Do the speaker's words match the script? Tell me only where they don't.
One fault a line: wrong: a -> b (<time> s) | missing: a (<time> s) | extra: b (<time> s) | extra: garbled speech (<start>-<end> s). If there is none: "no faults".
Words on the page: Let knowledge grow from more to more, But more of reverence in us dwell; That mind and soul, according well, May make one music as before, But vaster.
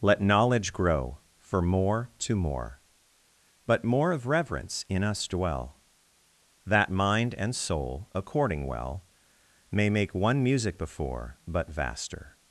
wrong: from -> for (1.4 s)
missing: as (10.8 s)